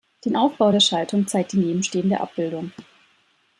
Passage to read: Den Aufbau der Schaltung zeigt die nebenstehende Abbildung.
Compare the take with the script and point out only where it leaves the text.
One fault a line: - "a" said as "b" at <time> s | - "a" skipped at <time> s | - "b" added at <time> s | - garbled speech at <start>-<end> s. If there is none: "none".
none